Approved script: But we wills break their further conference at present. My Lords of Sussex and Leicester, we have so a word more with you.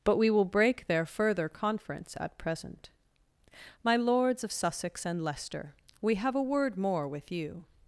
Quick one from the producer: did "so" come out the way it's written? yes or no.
no